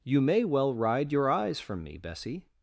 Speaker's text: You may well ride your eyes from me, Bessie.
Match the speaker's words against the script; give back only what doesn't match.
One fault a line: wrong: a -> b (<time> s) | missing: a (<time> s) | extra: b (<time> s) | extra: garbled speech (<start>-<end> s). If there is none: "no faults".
no faults